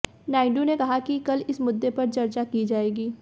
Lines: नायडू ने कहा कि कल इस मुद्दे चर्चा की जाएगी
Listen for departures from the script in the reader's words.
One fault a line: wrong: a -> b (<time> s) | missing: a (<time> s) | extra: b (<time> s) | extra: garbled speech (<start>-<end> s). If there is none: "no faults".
extra: पर (1.9 s)